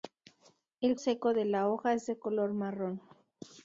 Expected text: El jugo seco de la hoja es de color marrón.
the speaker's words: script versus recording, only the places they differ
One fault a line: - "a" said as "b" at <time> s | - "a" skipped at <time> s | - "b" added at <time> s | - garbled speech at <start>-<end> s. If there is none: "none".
- "jugo" skipped at 0.9 s